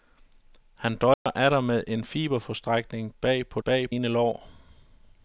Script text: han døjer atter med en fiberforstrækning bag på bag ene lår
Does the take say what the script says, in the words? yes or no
yes